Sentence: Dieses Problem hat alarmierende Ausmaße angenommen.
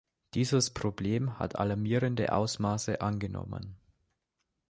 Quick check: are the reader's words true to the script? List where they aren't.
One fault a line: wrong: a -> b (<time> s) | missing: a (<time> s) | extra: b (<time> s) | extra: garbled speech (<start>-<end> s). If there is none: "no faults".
no faults